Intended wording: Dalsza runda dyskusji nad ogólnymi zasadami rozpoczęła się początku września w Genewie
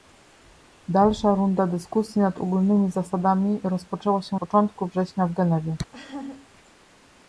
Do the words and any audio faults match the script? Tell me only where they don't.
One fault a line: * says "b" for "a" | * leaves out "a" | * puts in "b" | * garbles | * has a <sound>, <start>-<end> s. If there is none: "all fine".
* has a laugh, 5.9-6.5 s